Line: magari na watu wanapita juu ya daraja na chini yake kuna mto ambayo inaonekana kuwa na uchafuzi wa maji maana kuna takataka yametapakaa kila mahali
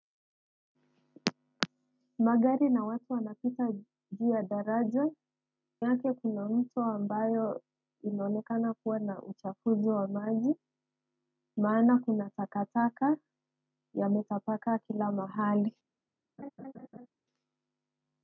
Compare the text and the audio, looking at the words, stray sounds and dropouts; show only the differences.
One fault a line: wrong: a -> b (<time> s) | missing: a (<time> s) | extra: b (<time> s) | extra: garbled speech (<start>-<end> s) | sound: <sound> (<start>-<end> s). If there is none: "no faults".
missing: na chini (5.1 s)
sound: laugh (16.4-17.1 s)